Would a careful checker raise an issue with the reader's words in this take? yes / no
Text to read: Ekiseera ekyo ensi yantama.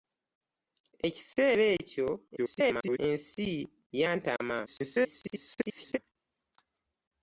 yes